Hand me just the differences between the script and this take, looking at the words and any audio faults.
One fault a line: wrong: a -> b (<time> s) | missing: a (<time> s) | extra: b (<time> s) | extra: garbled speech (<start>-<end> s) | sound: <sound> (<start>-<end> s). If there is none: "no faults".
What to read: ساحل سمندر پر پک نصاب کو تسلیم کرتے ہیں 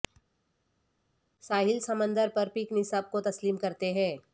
no faults